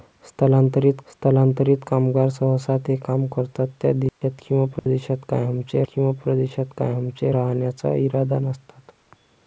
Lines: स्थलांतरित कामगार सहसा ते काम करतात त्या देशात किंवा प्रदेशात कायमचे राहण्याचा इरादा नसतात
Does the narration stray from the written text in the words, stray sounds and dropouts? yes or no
yes